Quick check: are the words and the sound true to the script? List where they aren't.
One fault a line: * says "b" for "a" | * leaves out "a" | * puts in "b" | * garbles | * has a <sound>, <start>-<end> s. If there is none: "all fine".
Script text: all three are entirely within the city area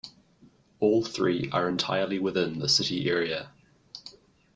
all fine